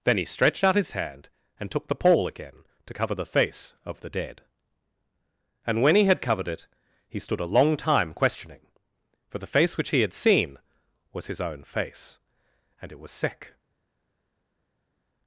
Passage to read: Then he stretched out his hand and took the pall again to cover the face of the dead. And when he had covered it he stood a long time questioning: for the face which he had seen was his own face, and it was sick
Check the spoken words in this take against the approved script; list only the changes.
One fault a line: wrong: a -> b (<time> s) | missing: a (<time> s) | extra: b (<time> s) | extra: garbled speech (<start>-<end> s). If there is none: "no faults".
no faults